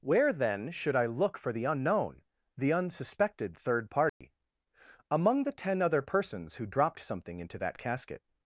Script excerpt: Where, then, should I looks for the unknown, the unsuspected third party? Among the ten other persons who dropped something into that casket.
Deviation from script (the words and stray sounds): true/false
true